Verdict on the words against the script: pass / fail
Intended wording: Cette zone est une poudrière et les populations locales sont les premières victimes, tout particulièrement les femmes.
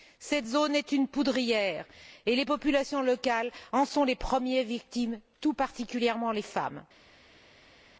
fail